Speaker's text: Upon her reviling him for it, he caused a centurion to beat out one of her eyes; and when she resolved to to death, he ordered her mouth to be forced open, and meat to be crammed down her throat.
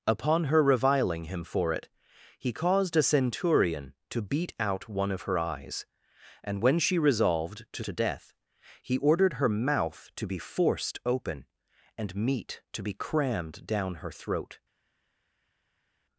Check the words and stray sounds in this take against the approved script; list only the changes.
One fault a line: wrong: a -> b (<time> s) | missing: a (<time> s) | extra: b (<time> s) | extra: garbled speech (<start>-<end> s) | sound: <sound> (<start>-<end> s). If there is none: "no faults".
no faults